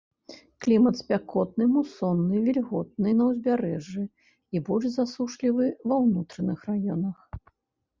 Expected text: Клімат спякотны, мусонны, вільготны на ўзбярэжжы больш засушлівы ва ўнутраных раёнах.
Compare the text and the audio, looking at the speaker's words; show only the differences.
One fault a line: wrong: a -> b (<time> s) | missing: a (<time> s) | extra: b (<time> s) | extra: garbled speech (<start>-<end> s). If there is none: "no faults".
extra: і (4.1 s)